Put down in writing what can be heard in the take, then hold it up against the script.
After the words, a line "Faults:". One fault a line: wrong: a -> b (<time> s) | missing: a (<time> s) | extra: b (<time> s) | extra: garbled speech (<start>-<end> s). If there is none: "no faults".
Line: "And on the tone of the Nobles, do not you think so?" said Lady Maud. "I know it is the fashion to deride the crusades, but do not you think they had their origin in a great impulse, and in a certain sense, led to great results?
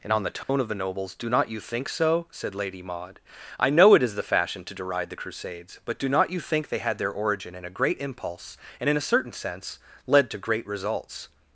"And on the tone of the Nobles, do not you think so?" said Lady Maud. "I know it is the fashion to deride the crusades, but do not you think they had their origin in a great impulse, and in a certain sense, led to great results?
Faults:
no faults